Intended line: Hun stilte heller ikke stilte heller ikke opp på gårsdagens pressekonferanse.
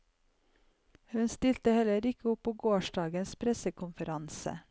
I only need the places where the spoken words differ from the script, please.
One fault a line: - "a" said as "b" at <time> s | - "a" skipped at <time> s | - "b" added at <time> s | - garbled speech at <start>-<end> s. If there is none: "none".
- "stilte heller ikke" skipped at 2.3 s